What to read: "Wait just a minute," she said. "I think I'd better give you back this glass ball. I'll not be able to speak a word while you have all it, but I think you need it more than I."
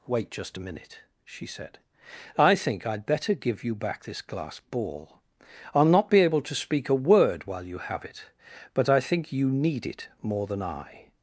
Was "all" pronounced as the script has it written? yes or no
no